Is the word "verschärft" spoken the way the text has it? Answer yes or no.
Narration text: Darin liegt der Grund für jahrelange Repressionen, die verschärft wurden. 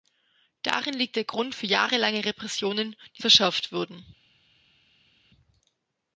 yes